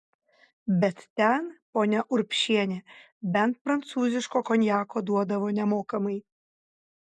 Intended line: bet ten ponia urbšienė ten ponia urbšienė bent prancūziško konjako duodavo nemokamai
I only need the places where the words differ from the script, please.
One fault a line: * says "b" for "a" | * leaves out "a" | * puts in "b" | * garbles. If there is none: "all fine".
* leaves out "ten ponia urbšienė"